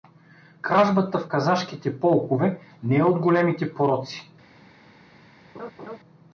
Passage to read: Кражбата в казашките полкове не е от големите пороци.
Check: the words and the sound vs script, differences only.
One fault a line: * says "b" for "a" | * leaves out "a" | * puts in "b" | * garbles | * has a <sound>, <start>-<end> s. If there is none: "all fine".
* has a laugh, 5.5-6.0 s